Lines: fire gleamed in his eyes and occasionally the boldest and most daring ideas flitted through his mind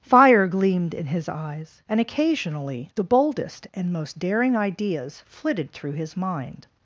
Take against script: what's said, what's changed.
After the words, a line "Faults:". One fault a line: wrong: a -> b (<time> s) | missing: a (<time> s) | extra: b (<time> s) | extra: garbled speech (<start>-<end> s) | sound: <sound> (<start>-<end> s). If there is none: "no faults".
fire gleamed in his eyes and occasionally the boldest and most daring ideas flitted through his mind
Faults:
no faults